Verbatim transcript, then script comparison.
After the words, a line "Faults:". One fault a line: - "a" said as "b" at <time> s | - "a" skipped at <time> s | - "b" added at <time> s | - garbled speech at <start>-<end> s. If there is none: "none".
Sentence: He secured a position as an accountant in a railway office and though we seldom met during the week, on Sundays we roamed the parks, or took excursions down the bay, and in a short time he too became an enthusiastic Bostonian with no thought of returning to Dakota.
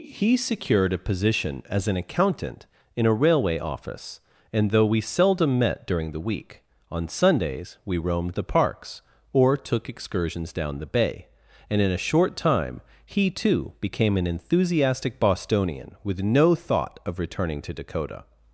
He secured a position as an accountant in a railway office and though we seldom met during the week, on Sundays we roamed the parks, or took excursions down the bay, and in a short time he too became an enthusiastic Bostonian with no thought of returning to Dakota.
Faults:
none